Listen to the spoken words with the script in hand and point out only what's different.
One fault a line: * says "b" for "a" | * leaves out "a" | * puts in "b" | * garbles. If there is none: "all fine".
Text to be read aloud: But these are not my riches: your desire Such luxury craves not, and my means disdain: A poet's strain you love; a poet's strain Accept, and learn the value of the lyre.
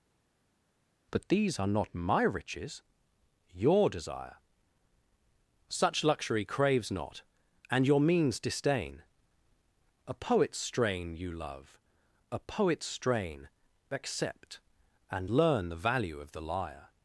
* says "your" for "my"